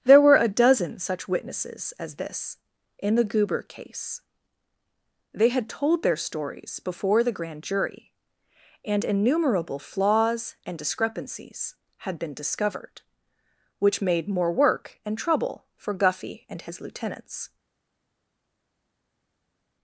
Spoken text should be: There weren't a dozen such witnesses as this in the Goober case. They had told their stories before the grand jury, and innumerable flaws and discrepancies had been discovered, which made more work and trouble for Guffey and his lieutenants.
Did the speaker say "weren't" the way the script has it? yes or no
no